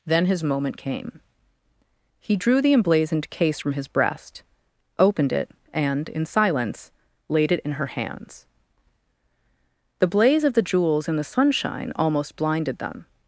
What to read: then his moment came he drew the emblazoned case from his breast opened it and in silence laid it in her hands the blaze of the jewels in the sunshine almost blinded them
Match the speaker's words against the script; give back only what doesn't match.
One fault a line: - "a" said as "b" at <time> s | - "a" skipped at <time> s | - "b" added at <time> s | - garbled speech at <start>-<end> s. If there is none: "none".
none